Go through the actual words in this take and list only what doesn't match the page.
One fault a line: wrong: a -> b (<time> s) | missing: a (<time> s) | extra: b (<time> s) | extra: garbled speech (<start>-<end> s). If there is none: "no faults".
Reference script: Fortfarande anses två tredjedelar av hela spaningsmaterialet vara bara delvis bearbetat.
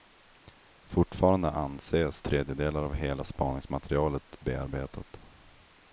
missing: två (2.2 s)
missing: vara bara delvis (4.4 s)